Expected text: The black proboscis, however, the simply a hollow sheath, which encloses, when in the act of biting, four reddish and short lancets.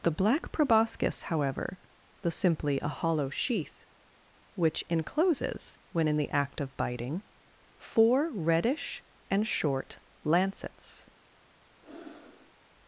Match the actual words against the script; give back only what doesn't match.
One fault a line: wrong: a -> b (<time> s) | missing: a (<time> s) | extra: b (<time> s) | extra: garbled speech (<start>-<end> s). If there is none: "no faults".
no faults